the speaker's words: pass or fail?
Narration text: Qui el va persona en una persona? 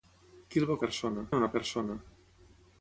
pass